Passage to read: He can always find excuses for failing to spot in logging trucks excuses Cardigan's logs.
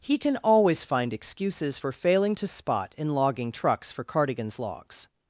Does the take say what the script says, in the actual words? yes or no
no